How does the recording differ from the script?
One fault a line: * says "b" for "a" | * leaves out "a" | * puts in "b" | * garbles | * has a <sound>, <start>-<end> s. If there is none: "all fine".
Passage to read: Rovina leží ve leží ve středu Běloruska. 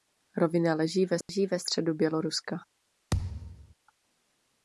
* has a dropout, 1.2-1.3 s
* has a thud, 3.1-3.7 s